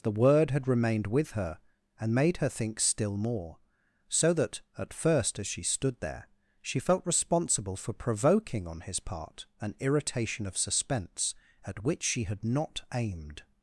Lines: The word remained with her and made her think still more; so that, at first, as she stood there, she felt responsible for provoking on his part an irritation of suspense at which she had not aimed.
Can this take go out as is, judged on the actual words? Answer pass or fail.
fail